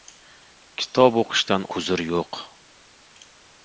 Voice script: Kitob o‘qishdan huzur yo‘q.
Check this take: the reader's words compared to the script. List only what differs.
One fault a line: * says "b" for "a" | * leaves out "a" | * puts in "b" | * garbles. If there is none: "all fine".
all fine